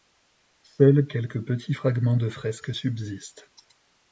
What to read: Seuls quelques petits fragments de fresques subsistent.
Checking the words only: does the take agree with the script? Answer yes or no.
yes